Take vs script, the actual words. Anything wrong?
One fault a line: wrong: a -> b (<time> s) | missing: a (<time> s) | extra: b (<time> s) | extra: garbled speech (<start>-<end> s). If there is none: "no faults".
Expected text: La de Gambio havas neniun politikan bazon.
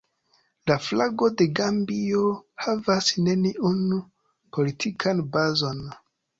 extra: flago (0.8 s)